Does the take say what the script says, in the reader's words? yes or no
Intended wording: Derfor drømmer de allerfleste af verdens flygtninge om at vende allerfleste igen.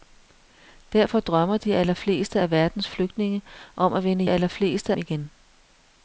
yes